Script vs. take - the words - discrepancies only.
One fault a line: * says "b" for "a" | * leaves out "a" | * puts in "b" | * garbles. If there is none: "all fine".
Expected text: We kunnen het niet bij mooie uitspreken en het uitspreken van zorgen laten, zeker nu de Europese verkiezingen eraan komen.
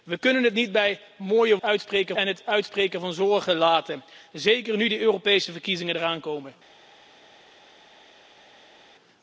all fine